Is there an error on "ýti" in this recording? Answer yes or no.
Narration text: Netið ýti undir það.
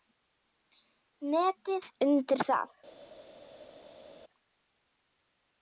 yes